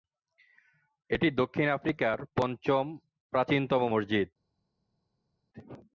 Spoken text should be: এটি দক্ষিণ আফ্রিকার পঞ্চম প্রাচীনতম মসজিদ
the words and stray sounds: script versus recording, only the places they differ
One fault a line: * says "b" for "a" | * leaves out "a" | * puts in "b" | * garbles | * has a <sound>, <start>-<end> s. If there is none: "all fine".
all fine